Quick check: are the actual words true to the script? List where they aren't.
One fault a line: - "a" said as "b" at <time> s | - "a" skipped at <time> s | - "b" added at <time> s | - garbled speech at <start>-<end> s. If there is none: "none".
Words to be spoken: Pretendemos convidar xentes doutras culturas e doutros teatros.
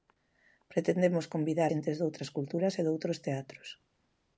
none